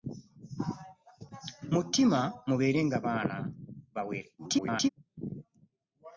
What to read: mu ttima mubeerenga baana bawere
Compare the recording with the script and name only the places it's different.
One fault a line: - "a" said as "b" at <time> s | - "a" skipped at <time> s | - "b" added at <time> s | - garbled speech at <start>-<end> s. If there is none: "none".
- garbled speech at 4.4-4.9 s